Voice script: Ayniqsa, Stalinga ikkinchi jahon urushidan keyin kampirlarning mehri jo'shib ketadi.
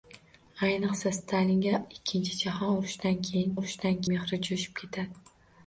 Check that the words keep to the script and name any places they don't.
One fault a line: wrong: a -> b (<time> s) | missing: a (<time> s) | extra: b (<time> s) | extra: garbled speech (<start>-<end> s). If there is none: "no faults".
wrong: kampirlarning -> urushidan (3.6 s)